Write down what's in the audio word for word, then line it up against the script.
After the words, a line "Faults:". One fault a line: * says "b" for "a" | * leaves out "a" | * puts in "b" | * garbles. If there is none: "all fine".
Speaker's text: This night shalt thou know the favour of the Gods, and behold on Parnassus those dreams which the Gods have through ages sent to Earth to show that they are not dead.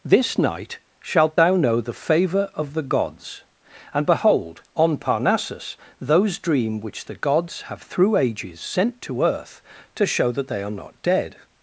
This night shalt thou know the favour of the Gods, and behold on Parnassus those dream which the Gods have through ages sent to Earth to show that they are not dead.
Faults:
* says "dream" for "dreams"